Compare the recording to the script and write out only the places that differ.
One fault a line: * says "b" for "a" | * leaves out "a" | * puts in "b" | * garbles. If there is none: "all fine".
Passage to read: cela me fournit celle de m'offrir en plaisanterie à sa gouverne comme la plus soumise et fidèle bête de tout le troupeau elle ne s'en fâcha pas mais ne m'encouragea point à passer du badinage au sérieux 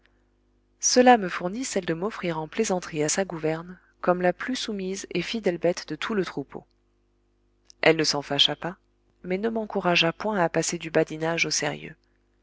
all fine